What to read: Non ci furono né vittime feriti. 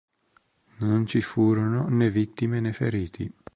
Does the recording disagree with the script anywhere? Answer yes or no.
yes